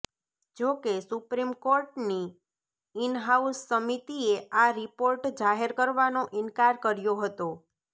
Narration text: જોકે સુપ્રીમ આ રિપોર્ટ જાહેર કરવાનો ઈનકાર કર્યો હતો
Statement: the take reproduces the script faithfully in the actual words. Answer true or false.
false